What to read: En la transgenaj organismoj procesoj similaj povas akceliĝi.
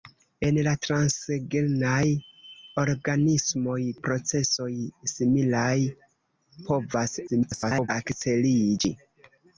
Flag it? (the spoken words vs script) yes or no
yes